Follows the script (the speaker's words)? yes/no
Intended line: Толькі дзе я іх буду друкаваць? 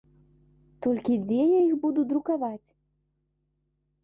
yes